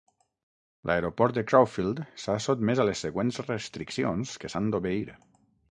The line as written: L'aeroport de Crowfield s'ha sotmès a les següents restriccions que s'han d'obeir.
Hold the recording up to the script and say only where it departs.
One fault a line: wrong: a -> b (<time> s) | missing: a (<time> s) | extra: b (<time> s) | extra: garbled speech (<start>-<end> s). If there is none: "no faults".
no faults